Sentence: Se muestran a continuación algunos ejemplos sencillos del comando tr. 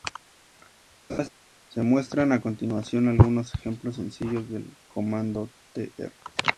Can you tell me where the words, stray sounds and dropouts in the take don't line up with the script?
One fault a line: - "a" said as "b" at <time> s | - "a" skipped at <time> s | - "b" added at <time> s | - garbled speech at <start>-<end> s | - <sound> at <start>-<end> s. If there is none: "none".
- laugh at 1.1-1.3 s